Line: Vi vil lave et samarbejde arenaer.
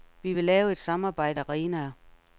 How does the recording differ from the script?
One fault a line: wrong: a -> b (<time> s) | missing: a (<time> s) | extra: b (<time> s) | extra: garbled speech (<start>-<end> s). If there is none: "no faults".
no faults